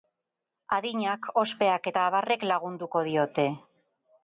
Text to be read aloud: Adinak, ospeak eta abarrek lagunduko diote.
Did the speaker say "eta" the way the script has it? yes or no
yes